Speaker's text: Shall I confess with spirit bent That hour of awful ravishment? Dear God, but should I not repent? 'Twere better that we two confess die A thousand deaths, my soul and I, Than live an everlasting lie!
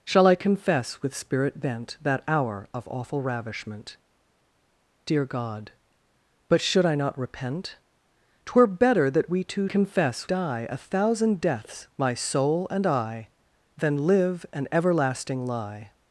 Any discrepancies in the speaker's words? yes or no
no